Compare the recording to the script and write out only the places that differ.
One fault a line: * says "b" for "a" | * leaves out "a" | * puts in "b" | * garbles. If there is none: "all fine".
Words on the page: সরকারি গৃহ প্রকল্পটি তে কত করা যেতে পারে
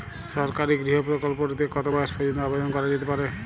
* puts in "বয়স পর্যন্ত আবেদন"